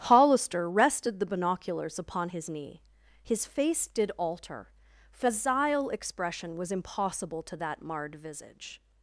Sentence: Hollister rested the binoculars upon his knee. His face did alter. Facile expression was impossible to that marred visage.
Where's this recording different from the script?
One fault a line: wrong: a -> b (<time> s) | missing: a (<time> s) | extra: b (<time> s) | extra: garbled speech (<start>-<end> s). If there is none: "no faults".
no faults